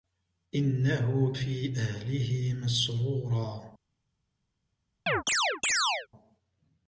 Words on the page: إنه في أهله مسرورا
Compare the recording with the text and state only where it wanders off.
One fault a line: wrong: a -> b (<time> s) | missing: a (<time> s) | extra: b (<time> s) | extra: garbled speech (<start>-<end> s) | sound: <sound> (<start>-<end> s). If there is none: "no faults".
sound: chirp (5.1-6.1 s)